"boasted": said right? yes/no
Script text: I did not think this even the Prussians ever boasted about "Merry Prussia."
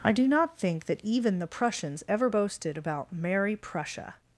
yes